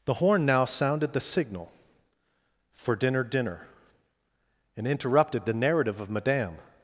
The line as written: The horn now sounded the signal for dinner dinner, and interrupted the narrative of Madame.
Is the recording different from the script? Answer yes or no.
no